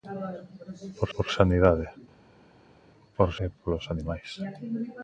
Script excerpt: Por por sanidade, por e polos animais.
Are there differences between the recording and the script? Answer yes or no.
no